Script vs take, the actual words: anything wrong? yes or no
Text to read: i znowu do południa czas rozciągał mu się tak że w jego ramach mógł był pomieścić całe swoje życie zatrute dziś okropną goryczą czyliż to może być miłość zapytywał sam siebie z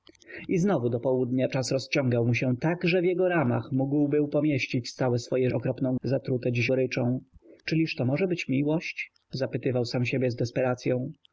yes